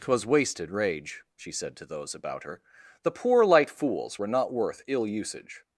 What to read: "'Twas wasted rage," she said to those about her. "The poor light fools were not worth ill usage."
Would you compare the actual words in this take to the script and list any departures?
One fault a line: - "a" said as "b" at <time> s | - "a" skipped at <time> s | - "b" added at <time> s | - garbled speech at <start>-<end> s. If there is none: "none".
none